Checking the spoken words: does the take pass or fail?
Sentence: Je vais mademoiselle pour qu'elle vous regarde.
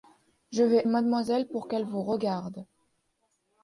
pass